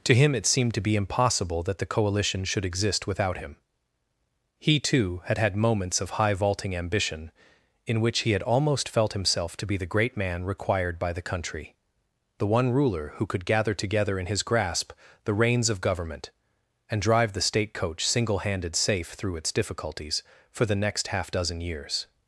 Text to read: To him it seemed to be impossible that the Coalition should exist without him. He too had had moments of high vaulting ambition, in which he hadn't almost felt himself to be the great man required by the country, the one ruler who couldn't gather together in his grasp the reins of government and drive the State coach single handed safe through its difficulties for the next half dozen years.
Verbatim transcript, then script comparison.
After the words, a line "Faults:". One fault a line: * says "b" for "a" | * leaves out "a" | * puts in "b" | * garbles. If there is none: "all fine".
To him it seemed to be impossible that the Coalition should exist without him. He too had had moments of high vaulting ambition, in which he had almost felt himself to be the great man required by the country, the one ruler who could gather together in his grasp the reins of government and drive the State coach single handed safe through its difficulties for the next half dozen years.
Faults:
* says "had" for "hadn't"
* says "could" for "couldn't"